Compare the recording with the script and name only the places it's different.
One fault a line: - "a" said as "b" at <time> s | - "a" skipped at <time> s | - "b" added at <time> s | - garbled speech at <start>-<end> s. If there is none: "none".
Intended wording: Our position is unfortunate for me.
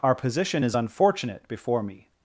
- "for" said as "before" at 1.5 s